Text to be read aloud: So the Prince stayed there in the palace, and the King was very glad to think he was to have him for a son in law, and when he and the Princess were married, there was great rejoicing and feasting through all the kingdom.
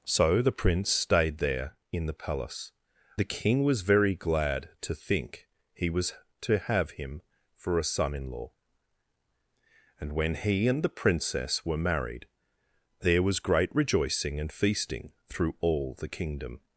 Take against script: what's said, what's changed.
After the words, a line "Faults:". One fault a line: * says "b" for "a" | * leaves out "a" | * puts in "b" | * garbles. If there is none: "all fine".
So the Prince stayed there in the palace, the King was very glad to think he was to have him for a son in law, and when he and the Princess were married, there was great rejoicing and feasting through all the kingdom.
Faults:
* leaves out "and"